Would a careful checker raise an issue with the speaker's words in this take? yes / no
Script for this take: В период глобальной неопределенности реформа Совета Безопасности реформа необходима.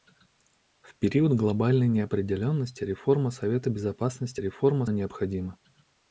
no